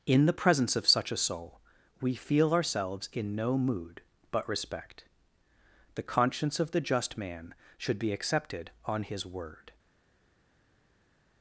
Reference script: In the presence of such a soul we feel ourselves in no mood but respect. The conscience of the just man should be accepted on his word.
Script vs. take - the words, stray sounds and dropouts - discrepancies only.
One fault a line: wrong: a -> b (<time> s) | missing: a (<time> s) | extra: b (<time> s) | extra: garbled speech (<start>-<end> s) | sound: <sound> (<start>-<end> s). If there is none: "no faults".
no faults